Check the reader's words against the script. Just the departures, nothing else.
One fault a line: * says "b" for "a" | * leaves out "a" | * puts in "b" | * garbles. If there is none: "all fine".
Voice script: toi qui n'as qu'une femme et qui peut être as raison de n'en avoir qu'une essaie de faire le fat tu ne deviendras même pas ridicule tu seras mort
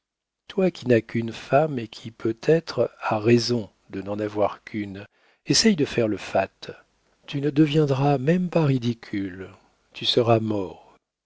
all fine